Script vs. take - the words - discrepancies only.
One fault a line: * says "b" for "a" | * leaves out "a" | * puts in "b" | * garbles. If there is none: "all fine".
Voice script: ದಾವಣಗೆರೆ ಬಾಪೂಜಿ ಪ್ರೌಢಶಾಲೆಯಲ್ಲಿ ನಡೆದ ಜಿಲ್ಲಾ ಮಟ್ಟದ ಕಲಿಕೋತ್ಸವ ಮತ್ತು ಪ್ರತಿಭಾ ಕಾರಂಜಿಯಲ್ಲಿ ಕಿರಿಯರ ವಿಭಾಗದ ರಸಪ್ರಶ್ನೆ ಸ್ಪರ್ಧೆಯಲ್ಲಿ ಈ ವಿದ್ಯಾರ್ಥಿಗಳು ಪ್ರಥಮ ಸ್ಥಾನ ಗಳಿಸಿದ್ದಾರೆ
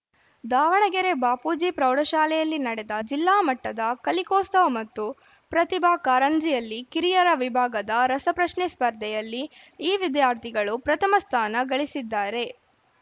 all fine